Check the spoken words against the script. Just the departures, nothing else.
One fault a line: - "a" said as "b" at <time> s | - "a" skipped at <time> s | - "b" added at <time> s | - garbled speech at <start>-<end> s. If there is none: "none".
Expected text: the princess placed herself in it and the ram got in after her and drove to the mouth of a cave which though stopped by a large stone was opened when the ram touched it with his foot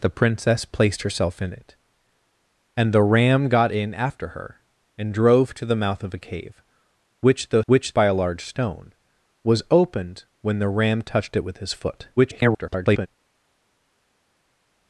- "stopped" said as "which" at 7.7 s
- garbled speech at 12.2-13.1 s